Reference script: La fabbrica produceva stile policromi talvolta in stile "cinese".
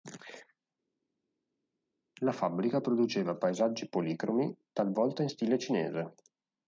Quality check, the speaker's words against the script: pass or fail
fail